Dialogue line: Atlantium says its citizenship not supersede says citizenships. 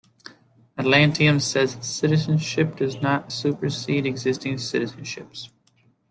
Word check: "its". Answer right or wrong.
right